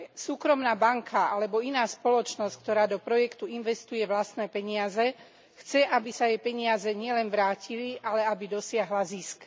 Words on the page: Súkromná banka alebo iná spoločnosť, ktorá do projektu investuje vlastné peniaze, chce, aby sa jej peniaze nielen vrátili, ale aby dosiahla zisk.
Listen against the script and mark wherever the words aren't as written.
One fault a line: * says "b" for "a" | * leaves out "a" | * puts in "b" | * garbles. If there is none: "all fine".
all fine